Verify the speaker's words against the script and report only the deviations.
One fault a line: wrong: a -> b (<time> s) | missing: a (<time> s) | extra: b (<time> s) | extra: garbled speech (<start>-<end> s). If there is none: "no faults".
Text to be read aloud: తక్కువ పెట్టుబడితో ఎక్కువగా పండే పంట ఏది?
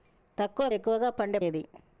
missing: పెట్టుబడితో (0.7 s)
missing: పంట (1.4 s)